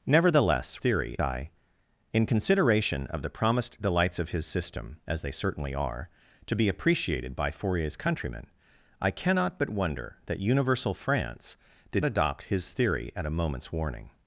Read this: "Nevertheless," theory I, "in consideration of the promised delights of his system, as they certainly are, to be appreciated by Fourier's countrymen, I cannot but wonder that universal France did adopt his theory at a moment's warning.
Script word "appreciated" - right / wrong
right